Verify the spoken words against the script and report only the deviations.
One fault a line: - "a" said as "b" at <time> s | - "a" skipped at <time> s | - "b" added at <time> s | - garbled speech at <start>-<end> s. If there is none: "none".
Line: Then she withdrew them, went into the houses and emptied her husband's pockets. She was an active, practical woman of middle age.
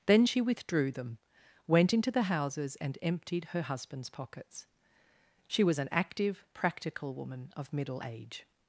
none